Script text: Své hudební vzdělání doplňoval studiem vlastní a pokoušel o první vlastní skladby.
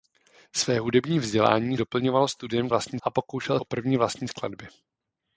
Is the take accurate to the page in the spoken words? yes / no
yes